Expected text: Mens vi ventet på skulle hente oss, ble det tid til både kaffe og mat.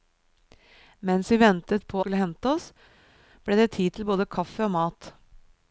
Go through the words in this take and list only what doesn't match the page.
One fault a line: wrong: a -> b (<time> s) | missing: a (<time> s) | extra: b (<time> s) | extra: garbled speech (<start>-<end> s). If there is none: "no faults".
no faults